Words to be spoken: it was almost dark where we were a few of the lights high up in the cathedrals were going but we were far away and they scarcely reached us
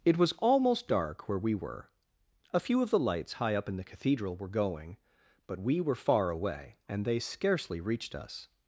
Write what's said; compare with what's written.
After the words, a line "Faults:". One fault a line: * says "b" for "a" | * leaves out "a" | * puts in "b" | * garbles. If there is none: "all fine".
it was almost dark where we were a few of the lights high up in the cathedral were going but we were far away and they scarcely reached us
Faults:
* says "cathedral" for "cathedrals"